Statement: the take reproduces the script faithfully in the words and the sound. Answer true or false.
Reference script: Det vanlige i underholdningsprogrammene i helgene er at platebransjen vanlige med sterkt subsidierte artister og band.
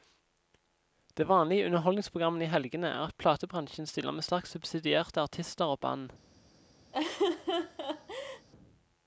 false